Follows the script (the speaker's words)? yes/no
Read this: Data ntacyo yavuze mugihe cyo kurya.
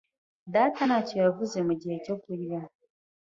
yes